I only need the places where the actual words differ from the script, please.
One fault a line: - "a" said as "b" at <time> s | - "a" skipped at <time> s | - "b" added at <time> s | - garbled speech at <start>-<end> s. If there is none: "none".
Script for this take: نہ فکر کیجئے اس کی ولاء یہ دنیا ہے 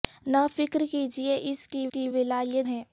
- "کی" added at 1.9 s
- "دنیا" skipped at 2.6 s